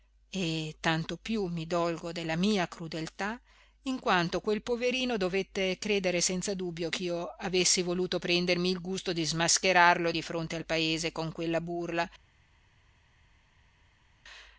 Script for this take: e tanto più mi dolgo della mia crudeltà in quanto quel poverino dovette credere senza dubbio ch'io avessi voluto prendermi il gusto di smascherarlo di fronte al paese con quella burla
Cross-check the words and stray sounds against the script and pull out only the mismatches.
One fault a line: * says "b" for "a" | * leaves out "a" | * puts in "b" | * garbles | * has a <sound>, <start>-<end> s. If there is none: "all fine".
all fine